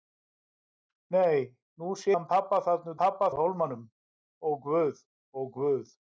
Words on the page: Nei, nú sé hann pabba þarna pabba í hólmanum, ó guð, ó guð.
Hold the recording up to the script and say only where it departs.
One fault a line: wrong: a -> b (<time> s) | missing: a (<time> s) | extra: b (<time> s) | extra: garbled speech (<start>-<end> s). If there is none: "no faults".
no faults